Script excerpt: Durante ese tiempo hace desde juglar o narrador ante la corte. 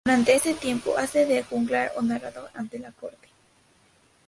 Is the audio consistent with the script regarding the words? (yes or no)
no